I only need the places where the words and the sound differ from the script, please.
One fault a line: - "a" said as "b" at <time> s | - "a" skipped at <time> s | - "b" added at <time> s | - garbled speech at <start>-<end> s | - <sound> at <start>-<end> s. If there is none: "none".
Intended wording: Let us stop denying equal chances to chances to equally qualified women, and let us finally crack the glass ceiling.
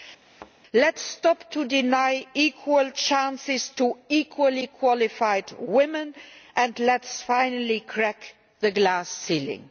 - thud at 0.2-0.5 s
- "chances to" skipped at 4.0 s